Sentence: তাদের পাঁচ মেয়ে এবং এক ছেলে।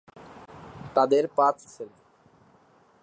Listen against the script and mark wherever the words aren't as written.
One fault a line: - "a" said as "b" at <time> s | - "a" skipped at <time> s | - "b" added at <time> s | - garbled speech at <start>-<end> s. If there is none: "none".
- "মেয়ে এবং এক" skipped at 1.6 s